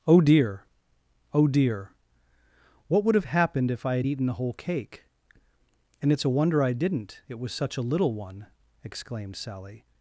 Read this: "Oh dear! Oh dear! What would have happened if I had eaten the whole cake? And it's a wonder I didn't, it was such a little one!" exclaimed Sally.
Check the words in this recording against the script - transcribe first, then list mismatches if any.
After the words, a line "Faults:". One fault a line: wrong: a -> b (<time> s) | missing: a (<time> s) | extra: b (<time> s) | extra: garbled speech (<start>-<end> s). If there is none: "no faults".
"Oh dear! Oh dear! What would have happened if I had eaten the whole cake? And it's a wonder I didn't, it was such a little one!" exclaimed Sally.
Faults:
no faults